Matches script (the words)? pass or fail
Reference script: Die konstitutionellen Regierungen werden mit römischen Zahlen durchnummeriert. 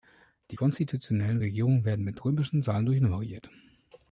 pass